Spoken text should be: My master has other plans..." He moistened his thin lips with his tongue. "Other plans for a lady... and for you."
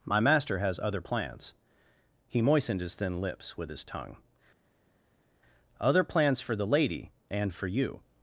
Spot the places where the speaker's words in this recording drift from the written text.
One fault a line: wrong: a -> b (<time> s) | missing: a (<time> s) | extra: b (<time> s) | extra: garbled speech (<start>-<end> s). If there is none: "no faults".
wrong: a -> the (6.5 s)